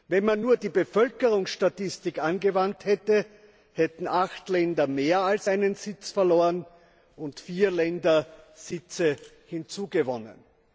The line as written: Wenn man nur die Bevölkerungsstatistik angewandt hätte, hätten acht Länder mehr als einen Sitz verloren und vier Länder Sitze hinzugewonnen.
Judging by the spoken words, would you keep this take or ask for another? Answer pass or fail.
pass